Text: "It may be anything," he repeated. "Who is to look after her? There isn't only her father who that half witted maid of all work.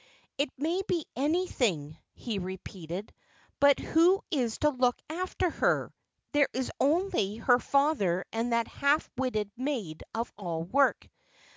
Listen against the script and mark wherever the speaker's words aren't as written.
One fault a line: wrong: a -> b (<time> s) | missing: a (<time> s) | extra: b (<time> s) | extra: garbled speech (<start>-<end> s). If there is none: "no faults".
extra: But (3.6 s)
wrong: isn't -> is (6.5 s)
wrong: who -> and (8.3 s)